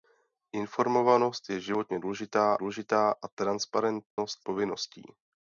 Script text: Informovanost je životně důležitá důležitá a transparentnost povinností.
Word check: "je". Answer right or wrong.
right